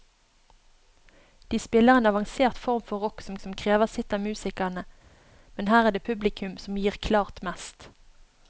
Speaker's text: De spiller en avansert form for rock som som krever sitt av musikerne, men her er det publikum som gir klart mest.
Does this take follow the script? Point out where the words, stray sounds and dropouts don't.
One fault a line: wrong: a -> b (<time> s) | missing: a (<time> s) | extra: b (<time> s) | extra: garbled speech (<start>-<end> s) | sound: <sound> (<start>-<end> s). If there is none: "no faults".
no faults